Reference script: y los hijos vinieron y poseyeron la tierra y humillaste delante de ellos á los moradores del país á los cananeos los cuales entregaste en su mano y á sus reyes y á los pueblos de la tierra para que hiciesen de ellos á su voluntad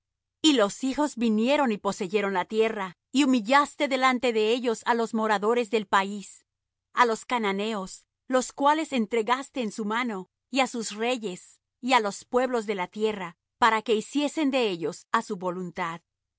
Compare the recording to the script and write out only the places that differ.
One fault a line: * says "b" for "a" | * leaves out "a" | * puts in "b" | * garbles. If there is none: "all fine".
all fine